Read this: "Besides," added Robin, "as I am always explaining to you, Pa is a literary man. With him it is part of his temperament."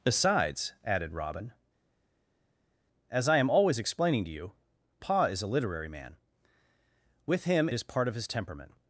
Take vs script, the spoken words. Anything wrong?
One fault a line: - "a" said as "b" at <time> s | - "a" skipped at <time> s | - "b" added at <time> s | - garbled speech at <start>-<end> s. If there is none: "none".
- "it" skipped at 7.7 s